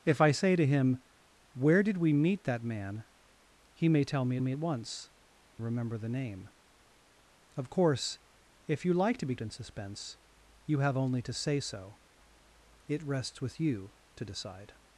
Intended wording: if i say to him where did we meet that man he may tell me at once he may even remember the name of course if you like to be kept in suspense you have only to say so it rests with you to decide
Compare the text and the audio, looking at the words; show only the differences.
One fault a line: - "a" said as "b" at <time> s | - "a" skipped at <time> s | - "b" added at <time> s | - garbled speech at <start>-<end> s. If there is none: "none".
- "me" added at 4.4 s
- "he may even" skipped at 5.1 s
- "kept" skipped at 9.3 s